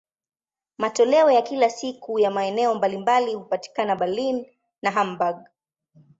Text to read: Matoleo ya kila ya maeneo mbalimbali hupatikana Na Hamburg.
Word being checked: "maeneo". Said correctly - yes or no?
yes